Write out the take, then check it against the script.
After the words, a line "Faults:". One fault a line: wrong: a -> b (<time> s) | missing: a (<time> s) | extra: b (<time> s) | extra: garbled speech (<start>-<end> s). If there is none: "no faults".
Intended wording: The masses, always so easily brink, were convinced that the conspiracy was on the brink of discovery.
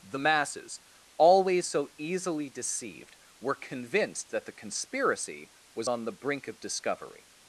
The masses, always so easily deceived, were convinced that the conspiracy was on the brink of discovery.
Faults:
wrong: brink -> deceived (2.5 s)